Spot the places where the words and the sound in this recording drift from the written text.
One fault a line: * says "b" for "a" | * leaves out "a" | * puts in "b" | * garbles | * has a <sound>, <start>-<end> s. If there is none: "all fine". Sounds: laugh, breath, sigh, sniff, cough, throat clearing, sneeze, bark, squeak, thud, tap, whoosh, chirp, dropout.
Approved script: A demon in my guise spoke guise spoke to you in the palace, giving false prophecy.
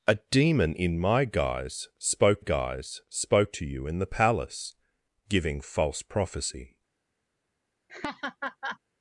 * has a laugh, 7.9-8.8 s